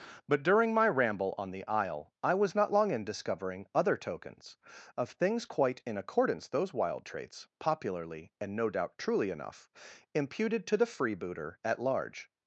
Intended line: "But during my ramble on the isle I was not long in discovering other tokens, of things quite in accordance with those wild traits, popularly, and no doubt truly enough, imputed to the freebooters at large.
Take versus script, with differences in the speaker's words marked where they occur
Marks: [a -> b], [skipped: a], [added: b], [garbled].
"But during my ramble on the isle I was not long in discovering other tokens, of things quite in accordance [skipped: with] those wild traits, popularly, and no doubt truly enough, imputed to the [freebooters -> freebooter] at large.